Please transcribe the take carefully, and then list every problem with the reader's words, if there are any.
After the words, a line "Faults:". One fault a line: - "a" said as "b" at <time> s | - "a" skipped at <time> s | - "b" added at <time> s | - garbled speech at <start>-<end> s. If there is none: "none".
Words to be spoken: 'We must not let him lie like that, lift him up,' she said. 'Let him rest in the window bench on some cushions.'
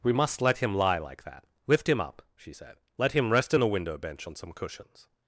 'We must let him lie like that, lift him up,' she said. 'Let him rest in the window bench on some cushions.'
Faults:
- "not" skipped at 0.4 s